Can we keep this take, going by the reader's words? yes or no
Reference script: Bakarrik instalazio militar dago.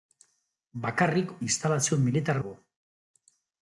yes